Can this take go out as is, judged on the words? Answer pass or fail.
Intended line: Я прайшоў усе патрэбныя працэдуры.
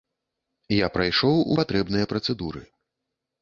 fail